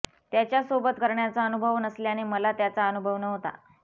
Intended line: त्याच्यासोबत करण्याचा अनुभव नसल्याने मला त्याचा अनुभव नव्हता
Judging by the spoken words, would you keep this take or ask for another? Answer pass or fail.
pass